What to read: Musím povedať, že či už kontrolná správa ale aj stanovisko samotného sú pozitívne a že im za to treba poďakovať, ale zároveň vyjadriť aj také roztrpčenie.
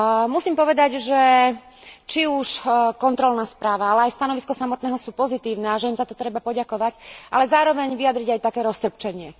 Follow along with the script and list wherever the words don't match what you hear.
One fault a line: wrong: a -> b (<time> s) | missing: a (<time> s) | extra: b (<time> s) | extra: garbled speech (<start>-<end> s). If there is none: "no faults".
no faults